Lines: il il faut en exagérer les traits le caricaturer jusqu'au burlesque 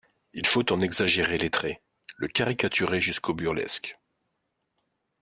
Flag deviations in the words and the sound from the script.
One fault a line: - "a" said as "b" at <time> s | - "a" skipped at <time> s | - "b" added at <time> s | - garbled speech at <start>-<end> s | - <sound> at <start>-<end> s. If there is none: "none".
- "il" skipped at 0.5 s